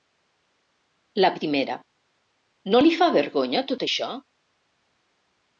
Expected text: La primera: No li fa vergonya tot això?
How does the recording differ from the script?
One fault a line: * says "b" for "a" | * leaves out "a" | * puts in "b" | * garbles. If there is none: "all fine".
all fine